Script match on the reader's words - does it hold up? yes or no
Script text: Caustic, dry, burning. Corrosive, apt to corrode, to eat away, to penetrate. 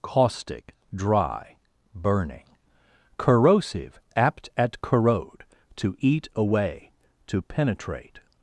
no